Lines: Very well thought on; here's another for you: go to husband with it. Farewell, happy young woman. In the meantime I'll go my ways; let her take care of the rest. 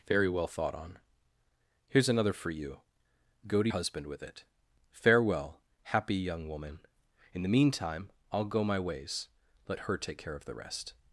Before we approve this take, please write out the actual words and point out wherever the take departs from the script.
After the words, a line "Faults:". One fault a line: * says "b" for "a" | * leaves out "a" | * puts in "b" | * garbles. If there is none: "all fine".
Very well thought on; here's another for you: go to husband with it. Farewell, happy young woman. In the meantime I'll go my ways; let her take care of the rest.
Faults:
all fine